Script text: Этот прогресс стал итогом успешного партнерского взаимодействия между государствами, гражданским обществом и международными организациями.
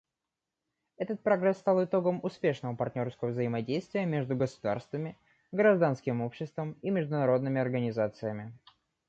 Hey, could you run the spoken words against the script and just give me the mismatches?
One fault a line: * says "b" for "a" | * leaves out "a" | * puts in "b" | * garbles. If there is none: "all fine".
all fine